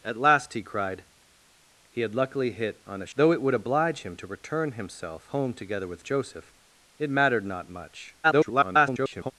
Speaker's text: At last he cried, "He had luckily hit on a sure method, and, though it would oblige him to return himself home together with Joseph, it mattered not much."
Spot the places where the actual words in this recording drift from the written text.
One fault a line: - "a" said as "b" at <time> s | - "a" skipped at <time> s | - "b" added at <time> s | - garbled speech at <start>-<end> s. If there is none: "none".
- "sure method and" skipped at 3.1 s
- garbled speech at 8.2-9.3 s